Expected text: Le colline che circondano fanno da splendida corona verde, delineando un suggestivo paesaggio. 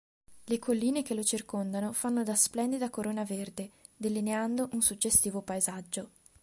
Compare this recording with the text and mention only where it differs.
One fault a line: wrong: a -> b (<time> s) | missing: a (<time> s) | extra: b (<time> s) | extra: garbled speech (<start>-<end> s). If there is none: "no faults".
extra: lo (1.1 s)